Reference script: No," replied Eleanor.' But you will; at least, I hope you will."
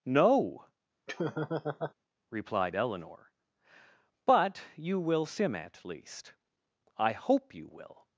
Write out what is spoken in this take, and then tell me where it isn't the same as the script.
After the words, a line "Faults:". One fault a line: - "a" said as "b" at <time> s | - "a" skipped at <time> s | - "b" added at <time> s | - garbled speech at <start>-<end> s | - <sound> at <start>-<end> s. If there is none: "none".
No," replied Eleanor.' But you will; sim at least, I hope you will."
Faults:
- laugh at 1.1-1.9 s
- "sim" added at 5.2 s